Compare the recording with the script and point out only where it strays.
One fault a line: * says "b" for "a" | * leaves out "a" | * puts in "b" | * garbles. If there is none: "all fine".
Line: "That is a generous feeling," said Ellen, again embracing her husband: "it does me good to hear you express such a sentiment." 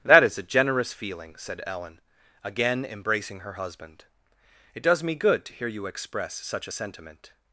all fine